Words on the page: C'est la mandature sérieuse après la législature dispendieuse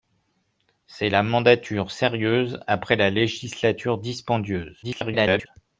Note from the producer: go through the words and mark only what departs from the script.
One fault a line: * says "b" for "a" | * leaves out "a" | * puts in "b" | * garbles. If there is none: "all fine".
* garbles